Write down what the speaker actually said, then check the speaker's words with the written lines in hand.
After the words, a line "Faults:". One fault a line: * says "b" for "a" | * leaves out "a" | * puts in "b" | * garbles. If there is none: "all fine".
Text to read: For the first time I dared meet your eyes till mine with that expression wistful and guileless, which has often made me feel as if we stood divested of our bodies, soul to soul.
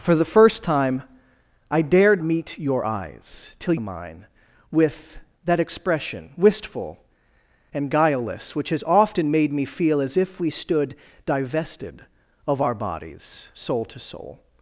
For the first time I dared meet your eyes till mine with that expression wistful and guileless, which has often made me feel as if we stood divested of our bodies, soul to soul.
Faults:
all fine